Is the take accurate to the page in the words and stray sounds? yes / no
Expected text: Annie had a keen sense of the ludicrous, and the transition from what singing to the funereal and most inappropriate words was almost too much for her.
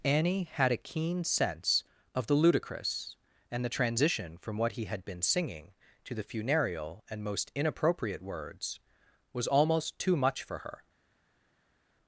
no